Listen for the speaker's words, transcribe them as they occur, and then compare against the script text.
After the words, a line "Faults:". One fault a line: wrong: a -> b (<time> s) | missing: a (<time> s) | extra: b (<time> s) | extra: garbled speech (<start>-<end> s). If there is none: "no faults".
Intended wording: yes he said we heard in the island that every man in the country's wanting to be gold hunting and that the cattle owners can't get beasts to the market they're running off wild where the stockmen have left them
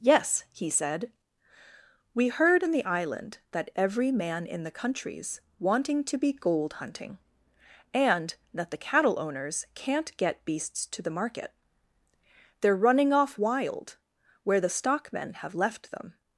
yes he said we heard in the island that every man in the country's wanting to be gold hunting and that the cattle owners can't get beasts to the market they're running off wild where the stockmen have left them
Faults:
no faults